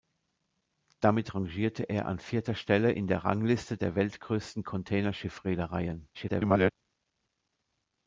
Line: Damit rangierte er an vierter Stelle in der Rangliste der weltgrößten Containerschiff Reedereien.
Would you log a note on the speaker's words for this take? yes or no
yes